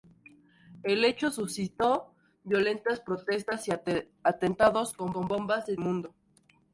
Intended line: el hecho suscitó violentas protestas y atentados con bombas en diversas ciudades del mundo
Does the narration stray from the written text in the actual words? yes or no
yes